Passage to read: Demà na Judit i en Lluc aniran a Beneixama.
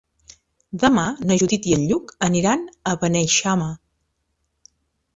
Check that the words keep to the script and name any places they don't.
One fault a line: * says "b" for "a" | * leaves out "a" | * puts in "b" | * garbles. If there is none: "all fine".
all fine